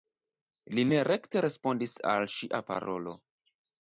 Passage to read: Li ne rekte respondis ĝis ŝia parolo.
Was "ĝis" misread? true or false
true